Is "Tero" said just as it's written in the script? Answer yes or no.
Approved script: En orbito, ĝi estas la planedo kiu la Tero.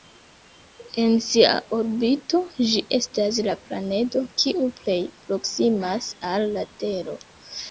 yes